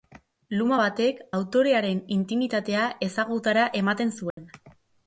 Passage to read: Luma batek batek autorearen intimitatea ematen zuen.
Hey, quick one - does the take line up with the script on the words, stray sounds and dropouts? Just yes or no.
no